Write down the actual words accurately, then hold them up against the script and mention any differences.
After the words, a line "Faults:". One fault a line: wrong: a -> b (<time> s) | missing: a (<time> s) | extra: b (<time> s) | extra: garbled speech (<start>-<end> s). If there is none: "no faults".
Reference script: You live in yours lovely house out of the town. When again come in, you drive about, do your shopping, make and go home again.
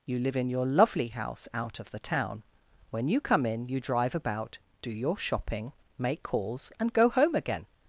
You live in your lovely house out of the town. When you come in, you drive about, do your shopping, make calls, and go home again.
Faults:
wrong: yours -> your (0.5 s)
wrong: again -> you (3.1 s)
extra: calls (6.2 s)